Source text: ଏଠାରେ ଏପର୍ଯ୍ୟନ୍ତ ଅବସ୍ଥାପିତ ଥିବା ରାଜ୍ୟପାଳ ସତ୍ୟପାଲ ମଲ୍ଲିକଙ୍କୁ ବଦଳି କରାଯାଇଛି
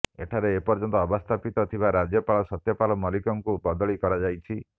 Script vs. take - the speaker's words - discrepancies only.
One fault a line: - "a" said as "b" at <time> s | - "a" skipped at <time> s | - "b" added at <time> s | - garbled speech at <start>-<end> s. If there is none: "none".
none